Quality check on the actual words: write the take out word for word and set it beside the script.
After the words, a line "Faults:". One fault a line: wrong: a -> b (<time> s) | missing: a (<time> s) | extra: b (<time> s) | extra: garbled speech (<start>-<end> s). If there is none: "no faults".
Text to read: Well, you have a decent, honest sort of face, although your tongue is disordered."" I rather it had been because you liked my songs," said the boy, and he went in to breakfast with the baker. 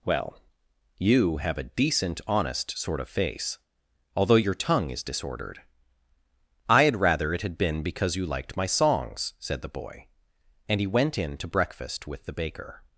Well, you have a decent, honest sort of face, although your tongue is disordered."" I had rather it had been because you liked my songs," said the boy, and he went in to breakfast with the baker.
Faults:
extra: had (6.8 s)